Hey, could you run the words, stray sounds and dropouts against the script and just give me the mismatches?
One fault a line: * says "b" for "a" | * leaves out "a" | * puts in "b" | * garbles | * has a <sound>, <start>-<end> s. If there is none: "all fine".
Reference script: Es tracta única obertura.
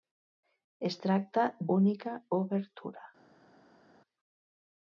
all fine